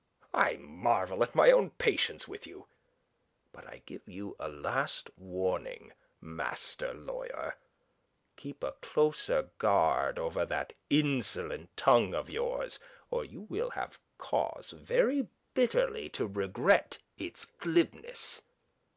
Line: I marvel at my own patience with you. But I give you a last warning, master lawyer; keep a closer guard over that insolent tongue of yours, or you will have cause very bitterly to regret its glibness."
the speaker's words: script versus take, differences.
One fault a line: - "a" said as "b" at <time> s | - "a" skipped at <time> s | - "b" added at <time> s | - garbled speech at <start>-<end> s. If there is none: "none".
none